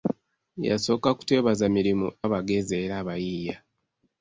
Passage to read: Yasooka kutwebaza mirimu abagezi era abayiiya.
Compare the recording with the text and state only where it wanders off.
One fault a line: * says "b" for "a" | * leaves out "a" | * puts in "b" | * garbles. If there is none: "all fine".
all fine